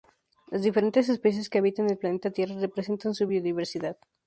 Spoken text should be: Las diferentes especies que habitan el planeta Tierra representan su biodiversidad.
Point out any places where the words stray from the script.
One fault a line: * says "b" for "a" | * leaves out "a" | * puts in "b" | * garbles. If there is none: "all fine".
all fine